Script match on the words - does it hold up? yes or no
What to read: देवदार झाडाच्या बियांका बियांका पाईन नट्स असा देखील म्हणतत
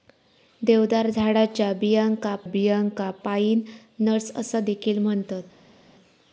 yes